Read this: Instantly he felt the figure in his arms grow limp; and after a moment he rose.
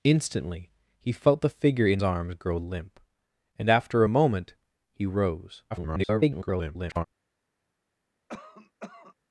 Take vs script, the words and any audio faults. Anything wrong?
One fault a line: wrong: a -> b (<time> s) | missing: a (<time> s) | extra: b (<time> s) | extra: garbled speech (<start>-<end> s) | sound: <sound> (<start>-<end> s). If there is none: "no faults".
missing: his (2.0 s)
extra: garbled speech (5.7-7.1 s)
sound: cough (8.3-9.1 s)